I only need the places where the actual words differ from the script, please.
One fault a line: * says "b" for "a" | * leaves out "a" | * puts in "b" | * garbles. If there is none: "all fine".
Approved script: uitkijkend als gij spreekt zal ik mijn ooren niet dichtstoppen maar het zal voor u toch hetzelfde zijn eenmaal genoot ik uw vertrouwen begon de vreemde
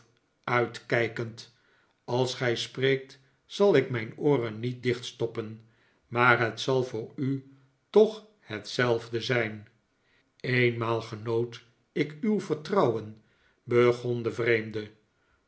all fine